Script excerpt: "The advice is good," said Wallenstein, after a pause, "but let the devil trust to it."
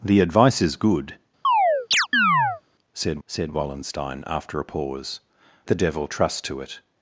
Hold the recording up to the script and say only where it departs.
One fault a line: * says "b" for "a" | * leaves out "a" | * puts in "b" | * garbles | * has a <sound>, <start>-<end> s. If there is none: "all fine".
* has a chirp, 1.4-2.6 s
* puts in "said"
* leaves out "but let"